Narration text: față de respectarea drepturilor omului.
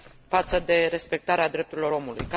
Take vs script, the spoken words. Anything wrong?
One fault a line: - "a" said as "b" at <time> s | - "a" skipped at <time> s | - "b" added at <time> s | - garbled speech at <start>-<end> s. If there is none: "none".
none